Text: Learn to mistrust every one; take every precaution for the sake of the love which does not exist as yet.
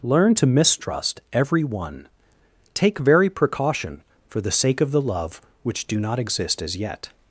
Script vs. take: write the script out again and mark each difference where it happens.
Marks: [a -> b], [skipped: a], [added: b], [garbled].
Learn to mistrust every one; take [every -> very] precaution for the sake of the love which [does -> do] not exist as yet.